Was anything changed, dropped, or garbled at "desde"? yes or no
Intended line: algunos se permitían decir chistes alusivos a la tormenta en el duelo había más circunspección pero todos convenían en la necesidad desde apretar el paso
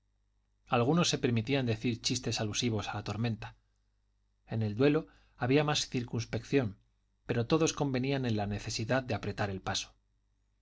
yes